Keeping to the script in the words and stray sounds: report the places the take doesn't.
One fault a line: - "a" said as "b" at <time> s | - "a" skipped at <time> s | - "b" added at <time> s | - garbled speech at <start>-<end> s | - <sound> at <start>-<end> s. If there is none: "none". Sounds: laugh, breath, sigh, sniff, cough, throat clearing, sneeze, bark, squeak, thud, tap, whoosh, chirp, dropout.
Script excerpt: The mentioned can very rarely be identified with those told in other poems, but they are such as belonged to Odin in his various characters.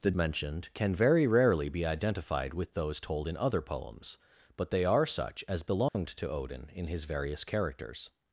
- dropout at 5.9-5.9 s